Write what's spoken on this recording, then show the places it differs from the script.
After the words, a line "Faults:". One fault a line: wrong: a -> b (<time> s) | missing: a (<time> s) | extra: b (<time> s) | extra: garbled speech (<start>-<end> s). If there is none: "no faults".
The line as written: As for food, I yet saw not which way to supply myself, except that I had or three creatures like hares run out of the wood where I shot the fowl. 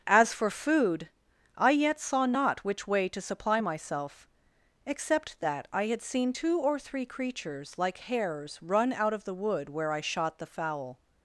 As for food, I yet saw not which way to supply myself, except that I had seen two or three creatures like hares run out of the wood where I shot the fowl.
Faults:
extra: seen two (6.0 s)